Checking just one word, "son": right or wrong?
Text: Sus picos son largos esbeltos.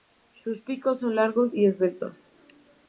right